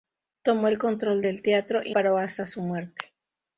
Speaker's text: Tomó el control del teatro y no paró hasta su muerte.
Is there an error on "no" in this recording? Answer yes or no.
yes